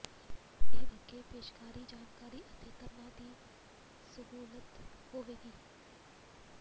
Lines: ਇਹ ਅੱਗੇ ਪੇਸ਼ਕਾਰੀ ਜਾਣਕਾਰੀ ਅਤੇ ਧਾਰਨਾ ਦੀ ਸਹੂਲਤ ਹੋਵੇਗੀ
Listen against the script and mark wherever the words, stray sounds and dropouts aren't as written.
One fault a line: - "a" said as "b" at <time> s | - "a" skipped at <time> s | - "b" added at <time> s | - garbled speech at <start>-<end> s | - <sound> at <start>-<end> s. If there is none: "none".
none